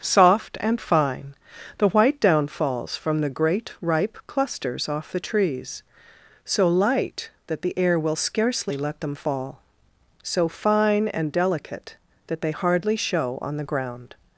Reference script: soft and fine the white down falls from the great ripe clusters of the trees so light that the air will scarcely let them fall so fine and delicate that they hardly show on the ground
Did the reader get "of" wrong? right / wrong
wrong